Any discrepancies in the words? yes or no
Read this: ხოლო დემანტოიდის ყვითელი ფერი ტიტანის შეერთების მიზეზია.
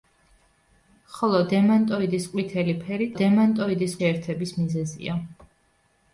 yes